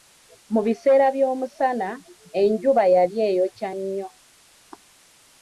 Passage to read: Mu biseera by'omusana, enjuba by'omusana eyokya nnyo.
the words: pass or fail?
fail